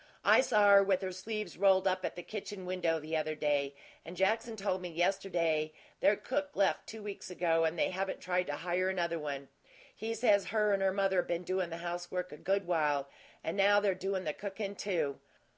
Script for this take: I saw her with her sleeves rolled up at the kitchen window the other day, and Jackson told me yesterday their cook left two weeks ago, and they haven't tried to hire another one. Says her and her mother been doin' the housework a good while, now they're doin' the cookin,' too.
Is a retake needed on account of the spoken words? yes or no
yes